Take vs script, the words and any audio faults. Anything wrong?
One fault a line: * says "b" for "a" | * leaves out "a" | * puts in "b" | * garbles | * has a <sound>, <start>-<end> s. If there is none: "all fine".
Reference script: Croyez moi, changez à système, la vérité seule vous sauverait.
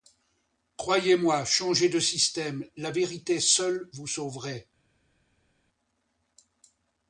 * says "de" for "à"